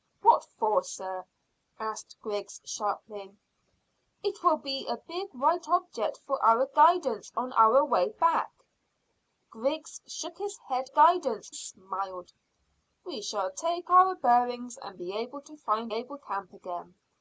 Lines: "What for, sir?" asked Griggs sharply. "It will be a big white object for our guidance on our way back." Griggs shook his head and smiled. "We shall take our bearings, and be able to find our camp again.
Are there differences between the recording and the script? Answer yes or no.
yes